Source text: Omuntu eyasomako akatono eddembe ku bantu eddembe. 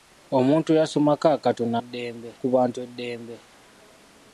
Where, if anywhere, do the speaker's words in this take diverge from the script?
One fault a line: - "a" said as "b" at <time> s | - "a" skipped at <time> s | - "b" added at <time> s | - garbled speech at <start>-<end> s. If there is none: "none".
none